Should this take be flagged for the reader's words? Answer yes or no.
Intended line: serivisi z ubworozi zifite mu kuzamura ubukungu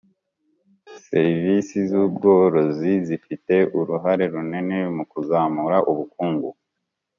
yes